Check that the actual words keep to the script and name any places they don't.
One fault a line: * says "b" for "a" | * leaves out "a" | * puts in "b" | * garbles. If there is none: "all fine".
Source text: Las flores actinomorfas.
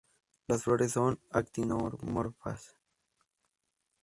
* puts in "son"